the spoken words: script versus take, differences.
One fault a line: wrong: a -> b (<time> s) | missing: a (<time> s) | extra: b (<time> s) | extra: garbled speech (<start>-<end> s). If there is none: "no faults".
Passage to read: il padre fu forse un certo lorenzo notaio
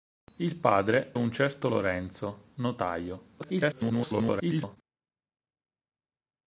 missing: fu forse (1.1 s)
extra: garbled speech (3.4-4.8 s)